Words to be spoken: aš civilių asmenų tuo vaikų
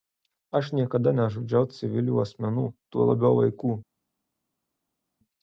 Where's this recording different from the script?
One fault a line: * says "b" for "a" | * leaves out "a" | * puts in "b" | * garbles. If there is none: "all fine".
* puts in "niekada nežudžiau"
* puts in "labiau"